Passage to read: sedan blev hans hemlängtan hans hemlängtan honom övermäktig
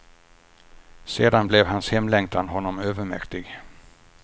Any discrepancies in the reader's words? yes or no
yes